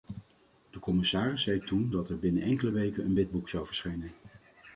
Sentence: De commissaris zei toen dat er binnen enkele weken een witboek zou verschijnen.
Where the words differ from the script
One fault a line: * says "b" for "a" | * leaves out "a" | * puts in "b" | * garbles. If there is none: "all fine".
all fine